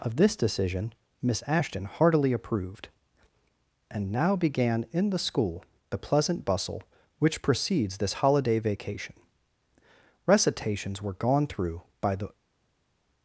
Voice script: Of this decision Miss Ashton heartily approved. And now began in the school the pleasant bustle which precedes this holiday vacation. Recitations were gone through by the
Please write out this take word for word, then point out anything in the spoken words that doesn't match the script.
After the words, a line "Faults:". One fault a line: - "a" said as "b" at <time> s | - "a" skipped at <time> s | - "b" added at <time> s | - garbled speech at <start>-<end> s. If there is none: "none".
Of this decision Miss Ashton heartily approved. And now began in the school the pleasant bustle which precedes this holiday vacation. Recitations were gone through by the
Faults:
none